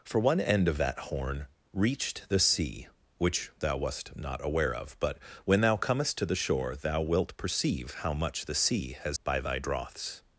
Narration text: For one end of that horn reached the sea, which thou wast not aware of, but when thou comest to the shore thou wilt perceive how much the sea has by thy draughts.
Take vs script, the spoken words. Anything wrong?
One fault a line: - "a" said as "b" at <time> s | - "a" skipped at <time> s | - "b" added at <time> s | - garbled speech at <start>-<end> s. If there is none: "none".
none